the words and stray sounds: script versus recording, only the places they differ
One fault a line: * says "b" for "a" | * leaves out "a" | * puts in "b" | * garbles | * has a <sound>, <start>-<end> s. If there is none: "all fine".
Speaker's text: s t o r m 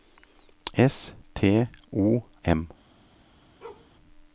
* leaves out "r"
* has a bark, 3.6-3.9 s